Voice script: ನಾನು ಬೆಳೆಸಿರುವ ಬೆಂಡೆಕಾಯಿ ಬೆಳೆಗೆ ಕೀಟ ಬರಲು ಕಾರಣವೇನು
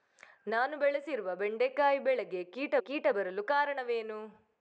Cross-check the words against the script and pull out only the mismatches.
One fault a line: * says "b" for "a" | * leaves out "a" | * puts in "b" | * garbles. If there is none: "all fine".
* puts in "ಕೀಟ"